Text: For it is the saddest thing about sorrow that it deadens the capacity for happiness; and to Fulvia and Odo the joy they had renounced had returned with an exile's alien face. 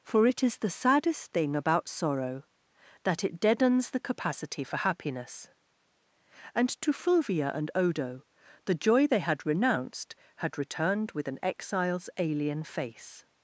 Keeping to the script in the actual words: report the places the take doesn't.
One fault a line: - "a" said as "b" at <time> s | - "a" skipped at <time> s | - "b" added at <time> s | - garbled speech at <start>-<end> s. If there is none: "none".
none